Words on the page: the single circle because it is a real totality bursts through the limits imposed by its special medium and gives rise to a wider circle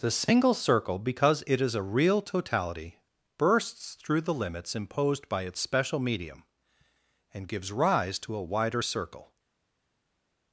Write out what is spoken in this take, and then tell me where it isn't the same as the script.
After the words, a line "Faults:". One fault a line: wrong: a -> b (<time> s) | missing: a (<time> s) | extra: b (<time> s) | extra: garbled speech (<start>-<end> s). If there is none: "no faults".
the single circle because it is a real totality bursts through the limits imposed by its special medium and gives rise to a wider circle
Faults:
no faults